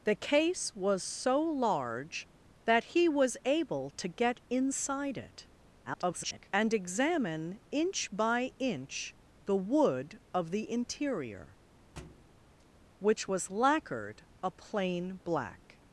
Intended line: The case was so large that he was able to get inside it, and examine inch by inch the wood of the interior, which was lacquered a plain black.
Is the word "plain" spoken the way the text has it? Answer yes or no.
yes